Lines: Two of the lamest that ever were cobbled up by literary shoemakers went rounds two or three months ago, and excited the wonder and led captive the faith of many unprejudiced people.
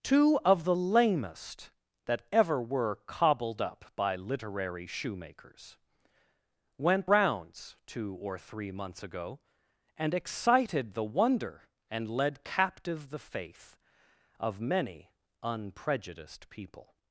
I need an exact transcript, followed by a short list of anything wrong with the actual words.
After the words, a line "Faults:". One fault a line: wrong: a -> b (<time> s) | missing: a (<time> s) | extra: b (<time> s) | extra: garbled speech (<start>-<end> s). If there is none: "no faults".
Two of the lamest that ever were cobbled up by literary shoemakers went rounds two or three months ago, and excited the wonder and led captive the faith of many unprejudiced people.
Faults:
no faults